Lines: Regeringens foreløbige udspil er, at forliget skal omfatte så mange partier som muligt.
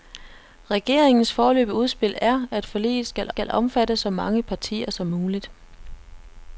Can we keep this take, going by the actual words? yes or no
no